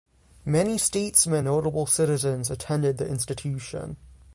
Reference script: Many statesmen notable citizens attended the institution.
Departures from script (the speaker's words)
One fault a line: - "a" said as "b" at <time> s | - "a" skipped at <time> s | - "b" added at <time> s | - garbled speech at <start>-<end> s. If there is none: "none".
none